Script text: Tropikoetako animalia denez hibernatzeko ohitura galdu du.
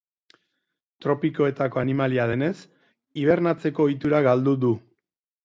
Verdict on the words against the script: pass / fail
pass